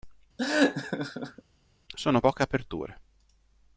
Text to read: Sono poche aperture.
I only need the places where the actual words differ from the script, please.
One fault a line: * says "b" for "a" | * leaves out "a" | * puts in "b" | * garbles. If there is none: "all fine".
all fine